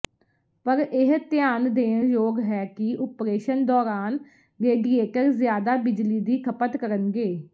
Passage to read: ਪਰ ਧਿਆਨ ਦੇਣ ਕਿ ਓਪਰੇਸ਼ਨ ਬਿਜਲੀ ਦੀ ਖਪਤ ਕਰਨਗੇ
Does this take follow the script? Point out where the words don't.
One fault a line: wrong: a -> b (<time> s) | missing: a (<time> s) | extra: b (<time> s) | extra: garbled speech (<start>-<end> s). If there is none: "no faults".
extra: ਇਹ (0.8 s)
extra: ਯੋਗ ਹੈ (2.0 s)
extra: ਦੌਰਾਨ ਰੇਡੀਏਟਰ ਜ਼ਿਆਦਾ (3.7 s)